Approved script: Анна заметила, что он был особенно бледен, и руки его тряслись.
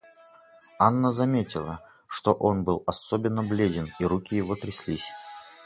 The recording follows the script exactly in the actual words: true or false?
true